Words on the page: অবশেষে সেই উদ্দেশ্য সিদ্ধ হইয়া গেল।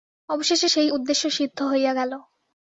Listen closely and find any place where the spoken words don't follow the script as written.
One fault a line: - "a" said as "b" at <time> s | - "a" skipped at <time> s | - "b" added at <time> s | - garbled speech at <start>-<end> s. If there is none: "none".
none